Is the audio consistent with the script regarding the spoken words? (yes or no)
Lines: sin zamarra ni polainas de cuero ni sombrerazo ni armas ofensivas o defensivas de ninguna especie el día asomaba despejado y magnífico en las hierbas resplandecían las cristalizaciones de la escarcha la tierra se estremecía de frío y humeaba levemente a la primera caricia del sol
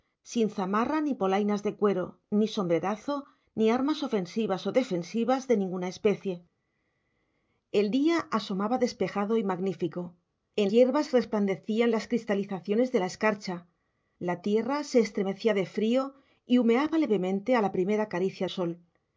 no